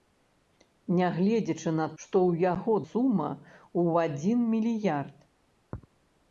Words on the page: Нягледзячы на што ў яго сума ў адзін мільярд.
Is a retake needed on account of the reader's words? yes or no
no